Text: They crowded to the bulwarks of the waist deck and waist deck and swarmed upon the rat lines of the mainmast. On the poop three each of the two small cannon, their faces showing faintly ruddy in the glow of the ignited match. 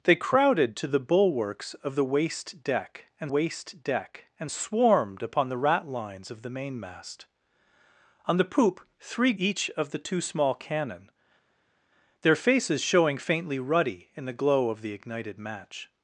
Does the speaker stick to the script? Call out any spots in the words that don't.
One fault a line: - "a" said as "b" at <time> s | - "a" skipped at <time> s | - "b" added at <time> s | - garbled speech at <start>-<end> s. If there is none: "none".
none